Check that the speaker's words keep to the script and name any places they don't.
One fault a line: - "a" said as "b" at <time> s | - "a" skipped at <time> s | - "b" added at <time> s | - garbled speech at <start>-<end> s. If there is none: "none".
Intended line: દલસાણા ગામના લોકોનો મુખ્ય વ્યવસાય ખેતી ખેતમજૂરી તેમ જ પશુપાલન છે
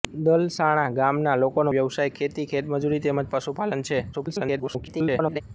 - "મુખ્ય" skipped at 1.7 s
- garbled speech at 4.1-5.4 s